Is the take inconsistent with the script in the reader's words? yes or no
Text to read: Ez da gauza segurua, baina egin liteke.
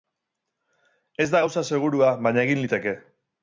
no